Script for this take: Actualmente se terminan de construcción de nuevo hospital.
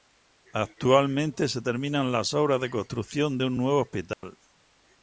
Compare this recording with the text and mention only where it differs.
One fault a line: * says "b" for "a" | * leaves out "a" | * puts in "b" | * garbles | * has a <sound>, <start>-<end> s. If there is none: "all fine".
* puts in "las obras"
* puts in "un"
* has a dropout, 4.1-4.2 s